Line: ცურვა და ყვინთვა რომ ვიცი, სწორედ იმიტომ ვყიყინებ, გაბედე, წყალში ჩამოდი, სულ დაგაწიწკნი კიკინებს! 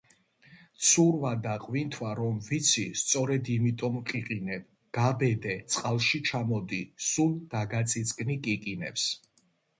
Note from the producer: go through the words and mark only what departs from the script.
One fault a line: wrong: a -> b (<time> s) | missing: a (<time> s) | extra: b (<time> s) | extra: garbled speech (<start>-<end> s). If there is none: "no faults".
no faults